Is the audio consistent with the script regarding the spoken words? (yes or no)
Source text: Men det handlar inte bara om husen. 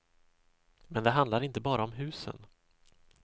yes